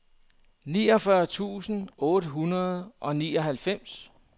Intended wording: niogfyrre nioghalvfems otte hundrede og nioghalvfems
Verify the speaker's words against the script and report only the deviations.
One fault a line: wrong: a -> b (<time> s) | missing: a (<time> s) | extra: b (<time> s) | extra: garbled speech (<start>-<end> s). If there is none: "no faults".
wrong: nioghalvfems -> tusind (1.3 s)